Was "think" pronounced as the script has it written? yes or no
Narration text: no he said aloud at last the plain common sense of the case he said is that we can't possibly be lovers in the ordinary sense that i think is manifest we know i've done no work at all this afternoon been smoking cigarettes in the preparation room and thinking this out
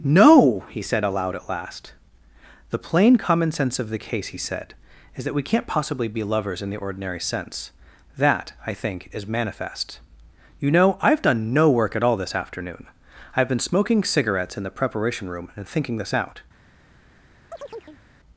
yes